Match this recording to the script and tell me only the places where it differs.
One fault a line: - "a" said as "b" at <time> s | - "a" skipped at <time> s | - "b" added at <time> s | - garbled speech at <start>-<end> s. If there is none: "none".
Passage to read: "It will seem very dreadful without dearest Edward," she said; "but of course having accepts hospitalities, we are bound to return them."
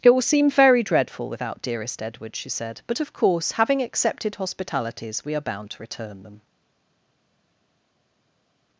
- "accepts" said as "accepted" at 3.8 s